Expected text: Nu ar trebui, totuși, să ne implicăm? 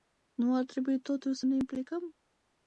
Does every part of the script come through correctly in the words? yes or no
yes